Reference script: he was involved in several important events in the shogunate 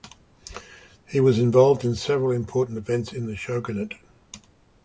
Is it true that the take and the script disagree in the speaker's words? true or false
false